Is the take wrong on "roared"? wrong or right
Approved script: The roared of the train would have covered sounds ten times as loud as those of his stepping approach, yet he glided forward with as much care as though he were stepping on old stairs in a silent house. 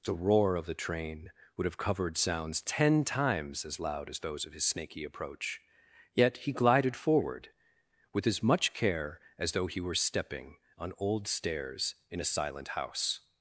wrong